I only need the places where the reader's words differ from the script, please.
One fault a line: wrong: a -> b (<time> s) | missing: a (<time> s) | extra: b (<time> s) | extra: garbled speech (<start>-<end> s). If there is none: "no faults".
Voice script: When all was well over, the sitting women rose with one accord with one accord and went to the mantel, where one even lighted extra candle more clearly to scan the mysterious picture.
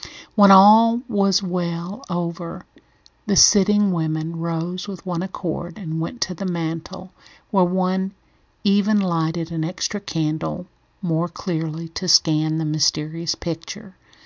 missing: with one accord (5.8 s)
extra: an (9.5 s)